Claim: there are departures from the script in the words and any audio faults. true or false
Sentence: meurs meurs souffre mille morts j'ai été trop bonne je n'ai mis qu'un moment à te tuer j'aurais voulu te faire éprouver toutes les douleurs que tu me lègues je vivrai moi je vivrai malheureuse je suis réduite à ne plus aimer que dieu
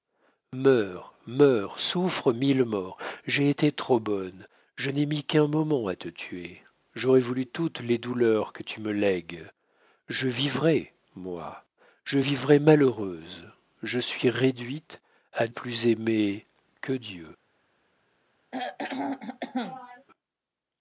true